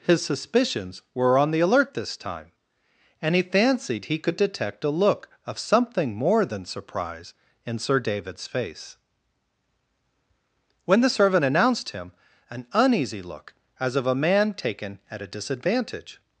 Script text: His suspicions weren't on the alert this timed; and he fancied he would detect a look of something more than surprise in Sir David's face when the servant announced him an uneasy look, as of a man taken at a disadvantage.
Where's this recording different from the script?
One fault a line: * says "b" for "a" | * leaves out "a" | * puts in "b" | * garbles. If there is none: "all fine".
* says "were" for "weren't"
* says "time" for "timed"
* says "could" for "would"